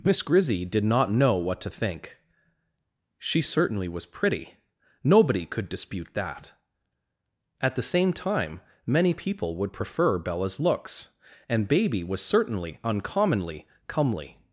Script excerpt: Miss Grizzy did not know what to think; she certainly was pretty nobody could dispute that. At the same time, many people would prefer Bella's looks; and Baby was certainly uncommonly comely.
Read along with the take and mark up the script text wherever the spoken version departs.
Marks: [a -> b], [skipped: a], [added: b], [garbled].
Miss Grizzy did not know what to think; she certainly was pretty nobody could dispute that. At the same time, many people would prefer Bella's looks; and Baby was certainly uncommonly comely.